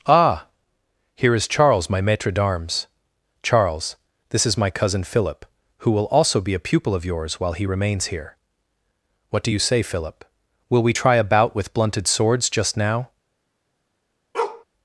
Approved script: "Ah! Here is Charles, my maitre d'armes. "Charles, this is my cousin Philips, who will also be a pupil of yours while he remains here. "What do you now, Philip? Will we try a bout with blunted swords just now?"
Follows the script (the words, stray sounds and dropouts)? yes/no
no